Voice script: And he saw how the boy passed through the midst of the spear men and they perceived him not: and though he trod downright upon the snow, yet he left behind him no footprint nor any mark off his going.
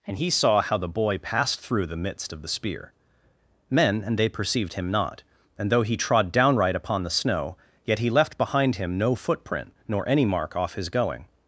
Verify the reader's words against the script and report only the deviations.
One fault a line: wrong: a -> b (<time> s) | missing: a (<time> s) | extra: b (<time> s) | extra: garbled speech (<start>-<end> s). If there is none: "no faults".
no faults